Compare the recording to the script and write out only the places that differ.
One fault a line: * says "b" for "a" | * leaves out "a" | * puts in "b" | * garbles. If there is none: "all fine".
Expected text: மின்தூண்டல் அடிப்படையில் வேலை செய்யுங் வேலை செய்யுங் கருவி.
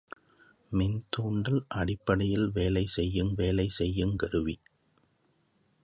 all fine